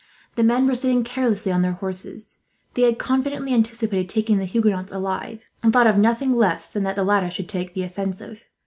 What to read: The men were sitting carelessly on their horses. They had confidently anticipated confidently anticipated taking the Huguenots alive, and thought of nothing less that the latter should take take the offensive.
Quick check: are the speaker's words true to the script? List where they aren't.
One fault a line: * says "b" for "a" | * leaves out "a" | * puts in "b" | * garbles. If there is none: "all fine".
* leaves out "confidently anticipated"
* puts in "than"
* leaves out "take"